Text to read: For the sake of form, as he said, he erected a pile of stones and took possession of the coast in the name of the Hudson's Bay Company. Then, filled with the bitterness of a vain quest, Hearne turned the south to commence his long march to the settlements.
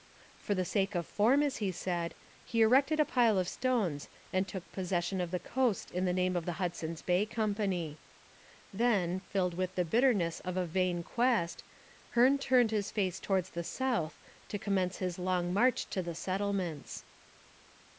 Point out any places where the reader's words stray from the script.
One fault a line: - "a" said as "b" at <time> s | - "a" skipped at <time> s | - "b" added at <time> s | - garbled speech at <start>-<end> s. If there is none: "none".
- "his face towards" added at 12.7 s